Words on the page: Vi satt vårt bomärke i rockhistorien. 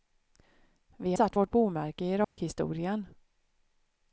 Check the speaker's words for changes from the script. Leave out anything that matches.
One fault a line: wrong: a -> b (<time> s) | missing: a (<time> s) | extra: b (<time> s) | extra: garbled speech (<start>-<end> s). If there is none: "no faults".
no faults